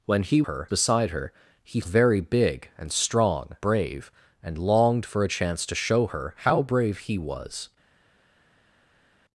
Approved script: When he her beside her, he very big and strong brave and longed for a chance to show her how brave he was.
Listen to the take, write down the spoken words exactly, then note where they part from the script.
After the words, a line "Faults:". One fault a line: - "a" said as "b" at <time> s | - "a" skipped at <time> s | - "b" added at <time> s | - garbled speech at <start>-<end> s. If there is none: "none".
When he her beside her, he very big and strong brave and longed for a chance to show her how brave he was.
Faults:
none